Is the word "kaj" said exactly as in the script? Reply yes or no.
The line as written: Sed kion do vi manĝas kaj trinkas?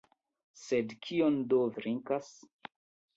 no